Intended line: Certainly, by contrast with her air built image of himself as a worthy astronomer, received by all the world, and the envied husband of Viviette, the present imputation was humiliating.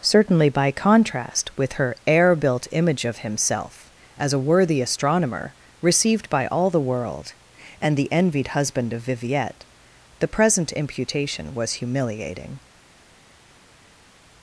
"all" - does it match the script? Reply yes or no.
yes